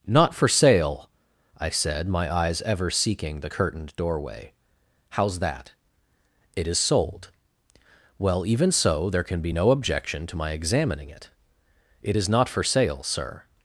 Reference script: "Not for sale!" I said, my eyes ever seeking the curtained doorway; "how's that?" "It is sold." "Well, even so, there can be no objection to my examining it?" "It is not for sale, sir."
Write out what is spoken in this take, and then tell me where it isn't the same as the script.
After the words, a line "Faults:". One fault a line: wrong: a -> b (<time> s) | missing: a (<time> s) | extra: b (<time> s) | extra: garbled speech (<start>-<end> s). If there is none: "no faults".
"Not for sale!" I said, my eyes ever seeking the curtained doorway; "how's that?" "It is sold." "Well, even so, there can be no objection to my examining it?" "It is not for sale, sir."
Faults:
no faults